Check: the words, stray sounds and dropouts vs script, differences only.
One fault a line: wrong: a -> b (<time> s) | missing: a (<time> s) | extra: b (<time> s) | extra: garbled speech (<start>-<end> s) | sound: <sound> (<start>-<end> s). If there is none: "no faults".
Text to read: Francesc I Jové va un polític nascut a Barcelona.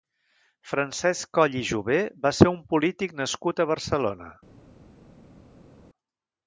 extra: Coll (1.4 s)
extra: ser (2.4 s)